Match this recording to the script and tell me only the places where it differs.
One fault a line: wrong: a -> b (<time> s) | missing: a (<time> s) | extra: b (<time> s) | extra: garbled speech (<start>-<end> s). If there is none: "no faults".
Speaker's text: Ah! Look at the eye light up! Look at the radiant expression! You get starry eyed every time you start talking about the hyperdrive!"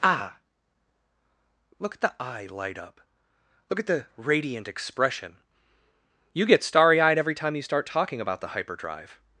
no faults